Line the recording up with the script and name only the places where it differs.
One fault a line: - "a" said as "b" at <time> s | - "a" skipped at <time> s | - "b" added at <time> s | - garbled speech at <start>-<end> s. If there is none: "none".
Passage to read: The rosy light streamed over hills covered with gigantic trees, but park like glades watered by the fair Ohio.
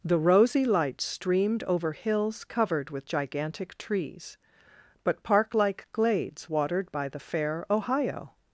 none